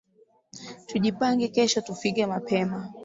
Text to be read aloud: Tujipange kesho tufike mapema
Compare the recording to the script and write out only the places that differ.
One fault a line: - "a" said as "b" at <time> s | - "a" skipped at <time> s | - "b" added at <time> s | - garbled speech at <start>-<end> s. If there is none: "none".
none